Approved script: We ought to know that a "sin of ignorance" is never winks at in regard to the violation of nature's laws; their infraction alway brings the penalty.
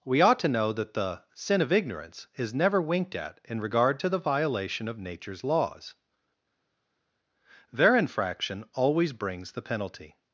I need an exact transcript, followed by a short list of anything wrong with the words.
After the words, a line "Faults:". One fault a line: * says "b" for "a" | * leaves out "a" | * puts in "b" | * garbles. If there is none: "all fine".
We ought to know that the "sin of ignorance" is never winked at in regard to the violation of nature's laws; their infraction always brings the penalty.
Faults:
* says "the" for "a"
* says "winked" for "winks"
* says "always" for "alway"